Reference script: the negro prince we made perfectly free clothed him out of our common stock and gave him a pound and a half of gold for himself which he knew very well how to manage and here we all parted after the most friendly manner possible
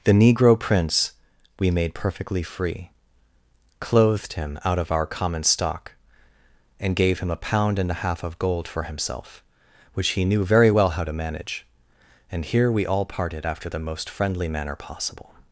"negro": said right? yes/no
yes